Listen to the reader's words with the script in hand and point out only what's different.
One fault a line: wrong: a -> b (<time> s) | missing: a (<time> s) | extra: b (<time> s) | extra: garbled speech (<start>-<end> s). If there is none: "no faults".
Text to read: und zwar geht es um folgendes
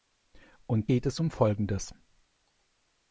missing: zwar (0.9 s)